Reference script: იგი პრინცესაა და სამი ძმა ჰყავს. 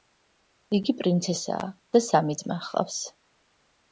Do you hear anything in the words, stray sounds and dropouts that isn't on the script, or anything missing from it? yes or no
no